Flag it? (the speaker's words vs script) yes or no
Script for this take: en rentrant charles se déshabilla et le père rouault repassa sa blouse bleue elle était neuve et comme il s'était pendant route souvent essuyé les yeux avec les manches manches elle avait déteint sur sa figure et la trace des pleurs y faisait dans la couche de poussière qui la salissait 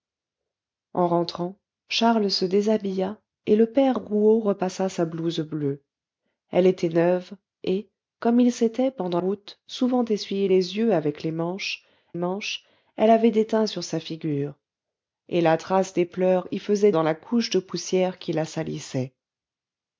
no